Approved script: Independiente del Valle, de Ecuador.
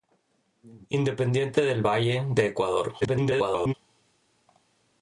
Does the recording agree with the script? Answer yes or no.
no